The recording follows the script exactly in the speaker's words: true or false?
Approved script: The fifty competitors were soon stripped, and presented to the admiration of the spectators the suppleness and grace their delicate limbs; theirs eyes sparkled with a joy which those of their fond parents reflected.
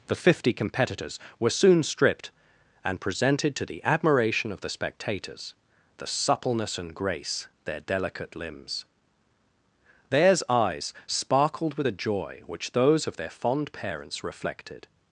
true